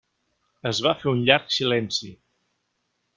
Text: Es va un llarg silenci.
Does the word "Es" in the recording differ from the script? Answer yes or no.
no